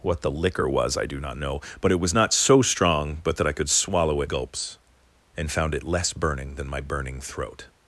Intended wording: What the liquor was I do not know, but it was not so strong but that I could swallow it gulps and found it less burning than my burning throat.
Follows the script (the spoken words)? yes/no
yes